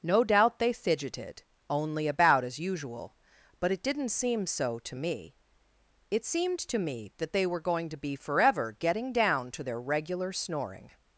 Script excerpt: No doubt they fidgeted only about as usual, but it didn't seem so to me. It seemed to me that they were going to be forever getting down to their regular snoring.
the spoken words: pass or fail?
pass